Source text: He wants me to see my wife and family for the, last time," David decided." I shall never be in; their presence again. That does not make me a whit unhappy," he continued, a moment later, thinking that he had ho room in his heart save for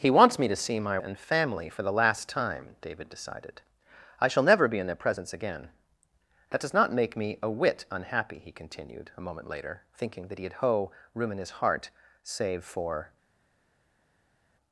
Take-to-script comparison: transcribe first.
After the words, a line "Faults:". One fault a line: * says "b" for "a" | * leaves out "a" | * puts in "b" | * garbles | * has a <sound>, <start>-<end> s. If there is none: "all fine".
He wants me to see my and family for the, last time," David decided." I shall never be in; their presence again. That does not make me a whit unhappy," he continued, a moment later, thinking that he had ho room in his heart save for
Faults:
* leaves out "wife"